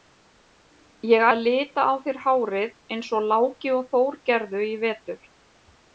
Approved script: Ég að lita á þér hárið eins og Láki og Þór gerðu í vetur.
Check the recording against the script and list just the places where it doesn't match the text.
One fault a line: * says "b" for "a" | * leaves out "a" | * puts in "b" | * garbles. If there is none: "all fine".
all fine